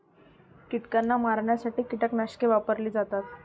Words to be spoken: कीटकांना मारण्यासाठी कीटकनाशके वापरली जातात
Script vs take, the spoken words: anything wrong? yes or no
no